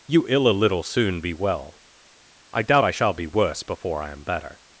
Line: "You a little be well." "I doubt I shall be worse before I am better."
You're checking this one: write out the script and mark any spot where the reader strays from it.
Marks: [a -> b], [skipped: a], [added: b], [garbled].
"You [added: ill] a little [added: soon] be well." "I doubt I shall be worse before I am better."